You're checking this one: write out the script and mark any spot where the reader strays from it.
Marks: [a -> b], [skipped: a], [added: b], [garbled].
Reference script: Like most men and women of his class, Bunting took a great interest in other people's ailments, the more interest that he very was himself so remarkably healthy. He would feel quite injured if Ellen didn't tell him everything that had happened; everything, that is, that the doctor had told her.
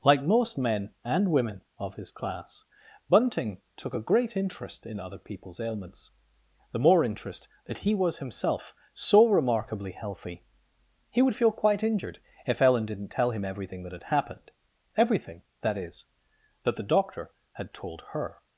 Like most men and women of his class, Bunting took a great interest in other people's ailments, the more interest that he [skipped: very] was himself so remarkably healthy. He would feel quite injured if Ellen didn't tell him everything that had happened; everything, that is, that the doctor had told her.